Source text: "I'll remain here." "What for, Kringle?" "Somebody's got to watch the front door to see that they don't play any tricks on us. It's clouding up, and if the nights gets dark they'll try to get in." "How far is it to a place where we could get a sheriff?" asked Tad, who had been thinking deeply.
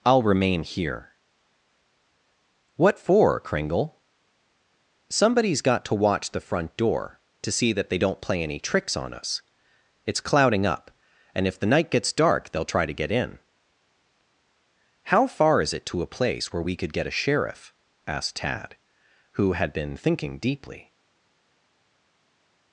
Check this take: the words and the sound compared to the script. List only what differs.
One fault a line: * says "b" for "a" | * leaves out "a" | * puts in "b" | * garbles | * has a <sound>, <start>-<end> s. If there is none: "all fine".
* says "night" for "nights"